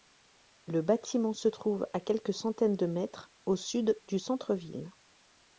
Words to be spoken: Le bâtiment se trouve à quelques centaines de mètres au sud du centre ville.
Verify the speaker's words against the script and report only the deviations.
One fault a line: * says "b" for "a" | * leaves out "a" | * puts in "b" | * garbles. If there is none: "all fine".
all fine